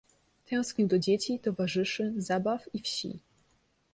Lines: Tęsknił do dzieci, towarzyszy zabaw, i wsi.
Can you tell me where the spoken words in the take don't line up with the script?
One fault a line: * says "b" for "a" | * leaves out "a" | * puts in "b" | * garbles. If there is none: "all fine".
all fine